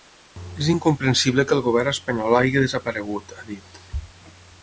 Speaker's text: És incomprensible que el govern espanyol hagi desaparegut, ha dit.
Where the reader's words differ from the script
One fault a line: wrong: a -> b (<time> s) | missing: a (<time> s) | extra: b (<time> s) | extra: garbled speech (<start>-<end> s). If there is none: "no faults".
no faults